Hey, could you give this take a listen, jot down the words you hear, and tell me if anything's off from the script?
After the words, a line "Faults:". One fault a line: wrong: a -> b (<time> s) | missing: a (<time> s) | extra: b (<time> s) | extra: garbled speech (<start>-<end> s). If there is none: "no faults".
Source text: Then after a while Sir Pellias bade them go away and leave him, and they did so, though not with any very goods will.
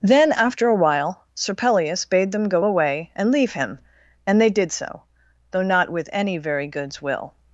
Then after a while Sir Pellias bade them go away and leave him, and they did so, though not with any very goods will.
Faults:
no faults